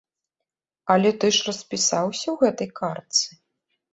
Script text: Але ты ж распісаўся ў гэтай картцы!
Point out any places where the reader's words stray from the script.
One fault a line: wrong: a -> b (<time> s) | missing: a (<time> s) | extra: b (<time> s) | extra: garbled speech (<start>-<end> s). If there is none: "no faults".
no faults